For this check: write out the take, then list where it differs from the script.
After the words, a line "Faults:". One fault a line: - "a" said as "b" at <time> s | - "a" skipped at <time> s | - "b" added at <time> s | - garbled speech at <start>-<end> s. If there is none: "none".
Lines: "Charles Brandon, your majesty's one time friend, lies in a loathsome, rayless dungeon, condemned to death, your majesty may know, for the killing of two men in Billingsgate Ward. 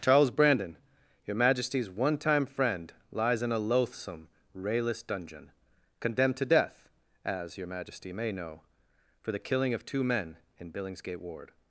"Charles Brandon, your majesty's one time friend, lies in a loathsome, rayless dungeon, condemned to death, as your majesty may know, for the killing of two men in Billingsgate Ward.
Faults:
- "as" added at 7.2 s